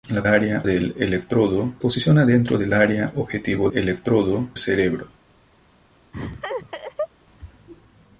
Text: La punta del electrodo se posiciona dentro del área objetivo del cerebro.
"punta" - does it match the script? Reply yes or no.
no